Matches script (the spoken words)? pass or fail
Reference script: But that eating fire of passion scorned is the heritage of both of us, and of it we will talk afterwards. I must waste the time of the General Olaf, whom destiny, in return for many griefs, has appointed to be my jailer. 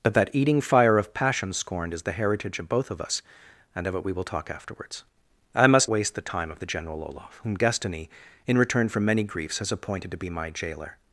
pass